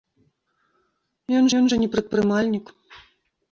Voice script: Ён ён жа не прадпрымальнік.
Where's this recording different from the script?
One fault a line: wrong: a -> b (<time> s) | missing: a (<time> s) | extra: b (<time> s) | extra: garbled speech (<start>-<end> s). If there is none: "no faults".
no faults